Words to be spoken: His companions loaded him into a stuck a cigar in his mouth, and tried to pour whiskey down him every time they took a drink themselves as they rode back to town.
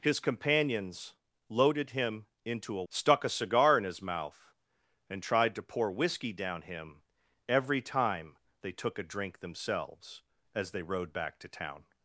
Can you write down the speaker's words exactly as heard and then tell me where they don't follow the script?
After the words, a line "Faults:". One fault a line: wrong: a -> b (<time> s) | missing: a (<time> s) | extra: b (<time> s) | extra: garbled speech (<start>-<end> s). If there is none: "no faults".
His companions loaded him into a stuck a cigar in his mouth, and tried to pour whiskey down him every time they took a drink themselves as they rode back to town.
Faults:
no faults